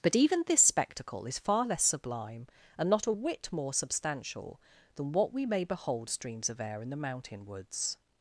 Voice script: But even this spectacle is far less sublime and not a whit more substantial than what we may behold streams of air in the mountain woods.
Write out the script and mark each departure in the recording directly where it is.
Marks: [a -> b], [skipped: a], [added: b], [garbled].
But even this spectacle is far less sublime and not a whit more substantial than what we may behold streams of air in the mountain woods.